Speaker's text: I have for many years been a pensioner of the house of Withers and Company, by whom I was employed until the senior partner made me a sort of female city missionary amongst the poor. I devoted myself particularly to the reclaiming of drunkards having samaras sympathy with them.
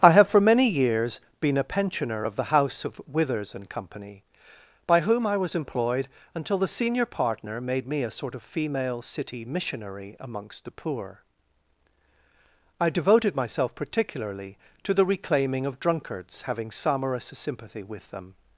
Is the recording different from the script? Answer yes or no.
no